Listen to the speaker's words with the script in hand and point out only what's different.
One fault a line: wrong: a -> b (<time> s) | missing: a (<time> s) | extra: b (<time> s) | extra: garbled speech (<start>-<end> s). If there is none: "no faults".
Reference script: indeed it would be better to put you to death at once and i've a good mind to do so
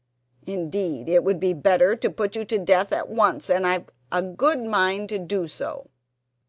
no faults